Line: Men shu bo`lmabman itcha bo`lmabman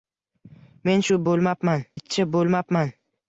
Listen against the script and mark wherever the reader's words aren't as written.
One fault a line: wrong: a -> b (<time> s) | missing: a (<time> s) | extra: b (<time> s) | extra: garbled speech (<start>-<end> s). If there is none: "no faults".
no faults